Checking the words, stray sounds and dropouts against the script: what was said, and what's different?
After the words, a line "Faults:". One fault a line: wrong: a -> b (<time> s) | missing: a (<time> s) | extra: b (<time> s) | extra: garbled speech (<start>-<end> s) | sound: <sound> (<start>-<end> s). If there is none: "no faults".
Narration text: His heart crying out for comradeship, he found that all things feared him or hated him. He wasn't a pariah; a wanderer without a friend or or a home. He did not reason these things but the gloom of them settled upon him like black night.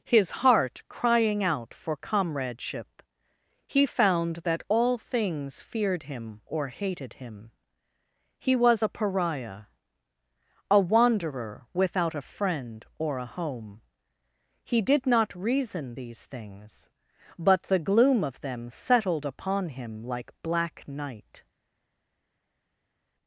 His heart crying out for comradeship, he found that all things feared him or hated him. He was a pariah; a wanderer without a friend or a home. He did not reason these things but the gloom of them settled upon him like black night.
Faults:
wrong: wasn't -> was (8.6 s)
missing: or (13.2 s)